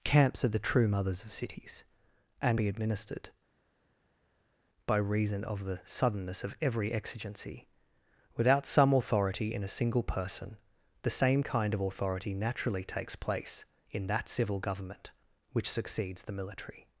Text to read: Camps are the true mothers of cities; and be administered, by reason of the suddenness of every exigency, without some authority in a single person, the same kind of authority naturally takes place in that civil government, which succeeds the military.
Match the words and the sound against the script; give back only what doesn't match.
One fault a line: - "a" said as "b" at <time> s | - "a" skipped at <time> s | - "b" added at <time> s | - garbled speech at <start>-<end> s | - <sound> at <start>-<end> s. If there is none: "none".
none